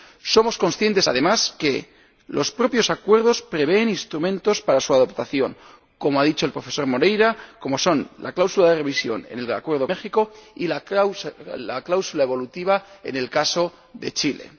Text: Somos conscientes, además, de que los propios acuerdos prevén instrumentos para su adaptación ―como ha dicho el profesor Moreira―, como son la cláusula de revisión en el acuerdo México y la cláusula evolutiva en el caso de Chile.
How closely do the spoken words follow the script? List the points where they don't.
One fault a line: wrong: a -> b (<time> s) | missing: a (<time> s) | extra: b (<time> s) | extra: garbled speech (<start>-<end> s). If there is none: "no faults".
no faults